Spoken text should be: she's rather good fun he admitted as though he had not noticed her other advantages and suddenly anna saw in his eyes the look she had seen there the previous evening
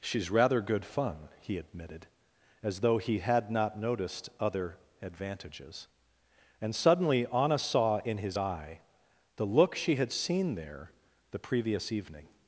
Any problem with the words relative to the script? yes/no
yes